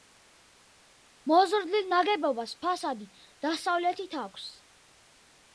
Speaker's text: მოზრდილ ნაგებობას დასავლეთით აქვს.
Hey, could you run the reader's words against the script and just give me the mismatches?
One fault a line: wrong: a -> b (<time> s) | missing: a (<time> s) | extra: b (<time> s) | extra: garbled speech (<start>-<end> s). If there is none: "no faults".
extra: ფასადი (2.7 s)